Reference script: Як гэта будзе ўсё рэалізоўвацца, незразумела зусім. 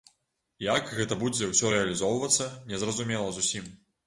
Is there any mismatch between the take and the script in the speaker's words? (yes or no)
no